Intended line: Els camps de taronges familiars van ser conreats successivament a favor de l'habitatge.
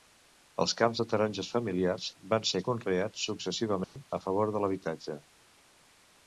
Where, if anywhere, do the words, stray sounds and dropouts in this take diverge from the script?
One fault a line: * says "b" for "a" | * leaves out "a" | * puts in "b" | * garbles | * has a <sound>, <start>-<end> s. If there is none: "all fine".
* has a dropout, 3.8-4.0 s